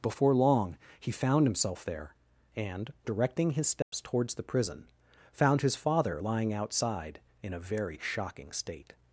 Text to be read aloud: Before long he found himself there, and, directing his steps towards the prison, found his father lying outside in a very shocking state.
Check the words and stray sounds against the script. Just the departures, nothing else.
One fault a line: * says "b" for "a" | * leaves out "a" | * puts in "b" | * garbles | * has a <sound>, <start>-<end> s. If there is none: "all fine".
* has a dropout, 3.8-3.9 s